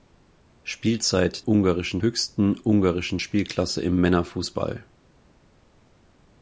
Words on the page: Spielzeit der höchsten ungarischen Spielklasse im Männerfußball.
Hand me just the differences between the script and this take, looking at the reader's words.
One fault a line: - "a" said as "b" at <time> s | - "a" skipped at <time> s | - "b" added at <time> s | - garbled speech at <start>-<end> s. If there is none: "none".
- "der" said as "ungarischen" at 1.4 s